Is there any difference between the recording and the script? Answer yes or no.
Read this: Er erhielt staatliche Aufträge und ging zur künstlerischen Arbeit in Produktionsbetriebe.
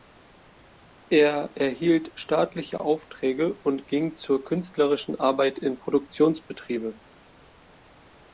no